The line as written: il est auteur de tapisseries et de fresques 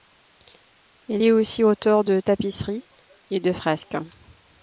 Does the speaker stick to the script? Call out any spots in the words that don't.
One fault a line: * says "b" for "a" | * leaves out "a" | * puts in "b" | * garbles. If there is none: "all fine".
* puts in "aussi"